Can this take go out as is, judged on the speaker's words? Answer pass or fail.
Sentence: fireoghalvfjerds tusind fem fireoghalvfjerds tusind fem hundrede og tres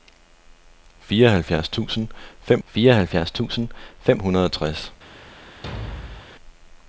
pass